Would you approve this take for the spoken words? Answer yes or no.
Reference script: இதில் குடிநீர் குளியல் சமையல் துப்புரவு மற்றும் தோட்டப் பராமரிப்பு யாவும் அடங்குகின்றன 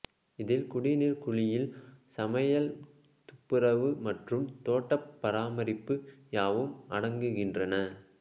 yes